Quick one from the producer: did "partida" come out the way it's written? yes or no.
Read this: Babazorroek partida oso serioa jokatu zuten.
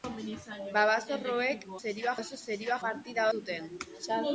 no